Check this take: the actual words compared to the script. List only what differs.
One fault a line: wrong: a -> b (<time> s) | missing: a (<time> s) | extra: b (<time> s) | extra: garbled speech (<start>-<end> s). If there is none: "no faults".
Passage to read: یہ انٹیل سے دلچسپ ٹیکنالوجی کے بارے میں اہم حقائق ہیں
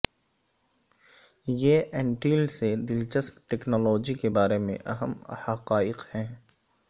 no faults